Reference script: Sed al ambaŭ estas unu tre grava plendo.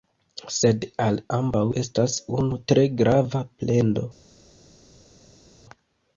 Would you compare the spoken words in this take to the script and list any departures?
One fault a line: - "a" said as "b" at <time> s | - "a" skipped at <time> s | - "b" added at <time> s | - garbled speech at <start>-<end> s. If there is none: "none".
none